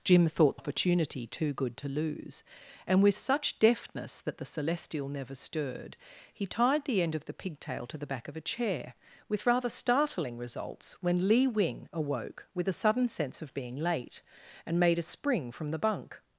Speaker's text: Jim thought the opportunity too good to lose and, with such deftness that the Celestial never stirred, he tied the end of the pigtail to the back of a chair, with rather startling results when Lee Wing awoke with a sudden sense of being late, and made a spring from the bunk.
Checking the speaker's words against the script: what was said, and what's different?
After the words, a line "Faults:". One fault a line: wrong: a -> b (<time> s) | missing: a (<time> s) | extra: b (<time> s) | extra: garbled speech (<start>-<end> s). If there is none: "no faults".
Jim thought opportunity too good to lose and, with such deftness that the Celestial never stirred, he tied the end of the pigtail to the back of a chair, with rather startling results when Lee Wing awoke with a sudden sense of being late, and made a spring from the bunk.
Faults:
missing: the (0.6 s)